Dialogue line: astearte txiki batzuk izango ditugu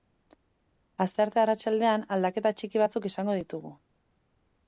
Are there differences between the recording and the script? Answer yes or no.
yes